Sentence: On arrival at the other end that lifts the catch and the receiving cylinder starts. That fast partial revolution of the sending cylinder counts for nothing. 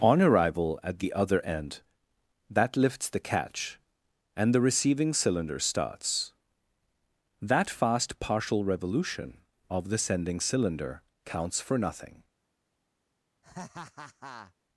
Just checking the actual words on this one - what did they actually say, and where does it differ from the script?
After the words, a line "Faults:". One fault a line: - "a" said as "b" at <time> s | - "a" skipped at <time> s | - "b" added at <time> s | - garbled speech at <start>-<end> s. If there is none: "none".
On arrival at the other end that lifts the catch and the receiving cylinder starts. That fast partial revolution of the sending cylinder counts for nothing.
Faults:
none